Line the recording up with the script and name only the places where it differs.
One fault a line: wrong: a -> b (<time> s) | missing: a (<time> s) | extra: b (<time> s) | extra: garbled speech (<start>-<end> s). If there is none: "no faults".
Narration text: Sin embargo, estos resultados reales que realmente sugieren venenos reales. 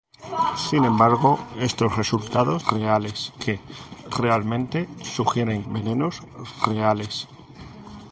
no faults